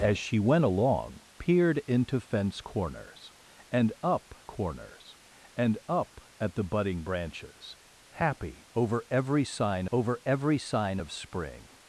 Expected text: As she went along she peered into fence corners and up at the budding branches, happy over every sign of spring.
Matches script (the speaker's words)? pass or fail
fail